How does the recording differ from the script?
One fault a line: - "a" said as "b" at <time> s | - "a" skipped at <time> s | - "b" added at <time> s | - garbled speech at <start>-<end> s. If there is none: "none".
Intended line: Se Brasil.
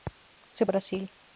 none